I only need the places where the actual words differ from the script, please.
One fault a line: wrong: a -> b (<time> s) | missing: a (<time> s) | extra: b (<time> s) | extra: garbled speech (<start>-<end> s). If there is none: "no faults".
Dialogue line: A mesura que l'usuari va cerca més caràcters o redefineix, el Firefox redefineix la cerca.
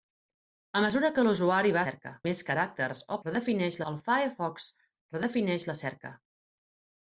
no faults